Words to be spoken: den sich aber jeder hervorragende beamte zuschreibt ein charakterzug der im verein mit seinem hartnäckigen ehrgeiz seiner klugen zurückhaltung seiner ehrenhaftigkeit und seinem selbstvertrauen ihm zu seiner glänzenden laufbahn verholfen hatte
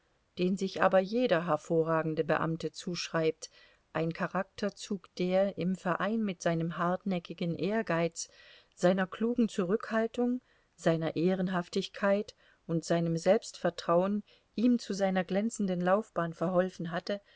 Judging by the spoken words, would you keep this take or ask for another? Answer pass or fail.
pass